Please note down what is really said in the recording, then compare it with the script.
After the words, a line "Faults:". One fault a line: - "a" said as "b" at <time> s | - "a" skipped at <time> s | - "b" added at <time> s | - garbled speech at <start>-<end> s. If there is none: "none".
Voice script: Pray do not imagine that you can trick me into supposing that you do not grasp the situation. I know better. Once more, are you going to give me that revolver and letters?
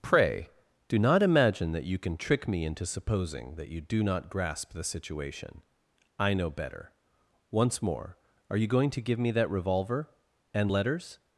Pray do not imagine that you can trick me into supposing that you do not grasp the situation. I know better. Once more, are you going to give me that revolver and letters?
Faults:
none